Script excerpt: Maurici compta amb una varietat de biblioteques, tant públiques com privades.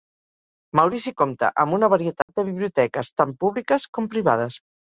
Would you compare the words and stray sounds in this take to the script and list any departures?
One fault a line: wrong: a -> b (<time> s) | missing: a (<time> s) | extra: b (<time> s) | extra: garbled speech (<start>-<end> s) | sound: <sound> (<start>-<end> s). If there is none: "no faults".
sound: dropout (2.2-2.3 s)